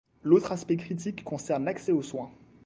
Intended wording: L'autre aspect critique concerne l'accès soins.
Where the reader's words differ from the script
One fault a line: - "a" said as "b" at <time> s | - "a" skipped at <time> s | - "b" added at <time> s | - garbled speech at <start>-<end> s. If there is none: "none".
- "aux" added at 1.9 s